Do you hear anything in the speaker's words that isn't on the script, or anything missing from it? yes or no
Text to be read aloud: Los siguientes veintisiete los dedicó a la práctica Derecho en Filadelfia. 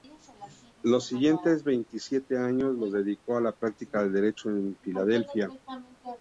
yes